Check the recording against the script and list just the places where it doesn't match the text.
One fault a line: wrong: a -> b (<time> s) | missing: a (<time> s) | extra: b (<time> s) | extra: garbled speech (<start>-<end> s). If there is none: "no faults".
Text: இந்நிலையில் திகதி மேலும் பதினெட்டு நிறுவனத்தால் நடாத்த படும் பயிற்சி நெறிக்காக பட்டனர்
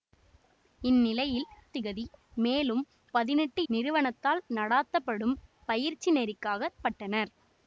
no faults